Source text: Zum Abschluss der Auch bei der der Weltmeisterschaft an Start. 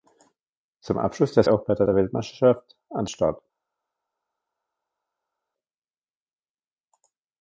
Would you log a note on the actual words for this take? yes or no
no